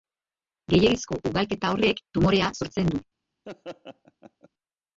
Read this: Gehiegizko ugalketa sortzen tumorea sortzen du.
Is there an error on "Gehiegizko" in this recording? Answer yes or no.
no